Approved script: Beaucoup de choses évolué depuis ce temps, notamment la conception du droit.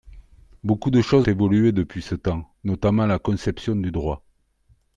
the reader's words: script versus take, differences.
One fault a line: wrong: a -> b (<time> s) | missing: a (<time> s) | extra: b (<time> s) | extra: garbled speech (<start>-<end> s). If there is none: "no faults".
no faults